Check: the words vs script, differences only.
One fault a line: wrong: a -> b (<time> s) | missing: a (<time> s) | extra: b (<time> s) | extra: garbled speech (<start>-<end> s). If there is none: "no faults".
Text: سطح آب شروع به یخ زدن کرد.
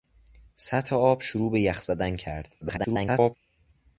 extra: garbled speech (2.6-3.4 s)